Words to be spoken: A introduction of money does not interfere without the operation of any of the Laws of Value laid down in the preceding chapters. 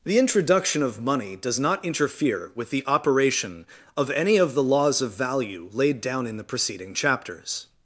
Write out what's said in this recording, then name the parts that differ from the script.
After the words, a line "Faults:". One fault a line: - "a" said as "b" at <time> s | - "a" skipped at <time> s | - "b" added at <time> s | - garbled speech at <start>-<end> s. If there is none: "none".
The introduction of money does not interfere with the operation of any of the Laws of Value laid down in the preceding chapters.
Faults:
- "A" said as "The" at 0.0 s
- "without" said as "with" at 2.5 s